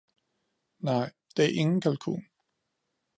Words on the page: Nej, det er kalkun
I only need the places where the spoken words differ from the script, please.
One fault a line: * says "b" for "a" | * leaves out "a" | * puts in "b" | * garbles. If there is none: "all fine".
* puts in "ingen"